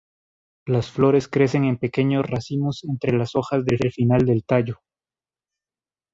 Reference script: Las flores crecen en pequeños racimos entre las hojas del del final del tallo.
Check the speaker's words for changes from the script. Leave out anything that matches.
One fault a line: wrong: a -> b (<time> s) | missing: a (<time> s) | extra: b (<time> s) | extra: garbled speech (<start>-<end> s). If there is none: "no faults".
no faults